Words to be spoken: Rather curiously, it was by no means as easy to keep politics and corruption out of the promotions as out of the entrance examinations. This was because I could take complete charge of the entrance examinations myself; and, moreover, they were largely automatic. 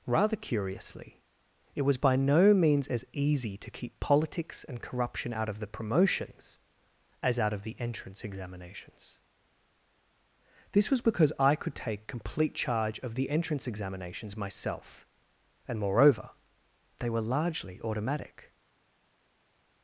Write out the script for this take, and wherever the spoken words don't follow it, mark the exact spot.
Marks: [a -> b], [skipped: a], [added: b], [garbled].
Rather curiously, it was by no means as easy to keep politics and corruption out of the promotions as out of the entrance examinations. This was because I could take complete charge of the entrance examinations myself; and, moreover, they were largely automatic.